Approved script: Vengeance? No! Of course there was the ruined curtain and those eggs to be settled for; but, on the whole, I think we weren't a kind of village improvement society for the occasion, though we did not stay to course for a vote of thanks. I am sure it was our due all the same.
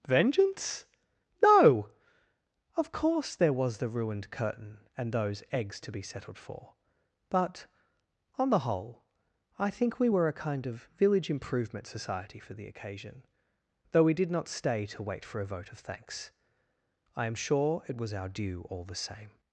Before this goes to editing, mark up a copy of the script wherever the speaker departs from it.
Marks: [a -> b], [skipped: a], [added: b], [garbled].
Vengeance? No! Of course there was the ruined curtain and those eggs to be settled for; but, on the whole, I think we [weren't -> were] a kind of village improvement society for the occasion, though we did not stay to [course -> wait] for a vote of thanks. I am sure it was our due all the same.